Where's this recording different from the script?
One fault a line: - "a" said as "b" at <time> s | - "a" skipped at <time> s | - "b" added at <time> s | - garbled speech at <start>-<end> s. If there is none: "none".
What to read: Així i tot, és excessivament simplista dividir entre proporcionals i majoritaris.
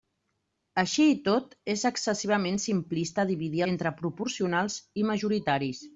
none